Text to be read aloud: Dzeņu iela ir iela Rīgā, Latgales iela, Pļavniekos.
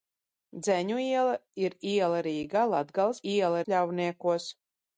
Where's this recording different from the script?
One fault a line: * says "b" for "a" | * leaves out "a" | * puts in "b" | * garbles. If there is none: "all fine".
all fine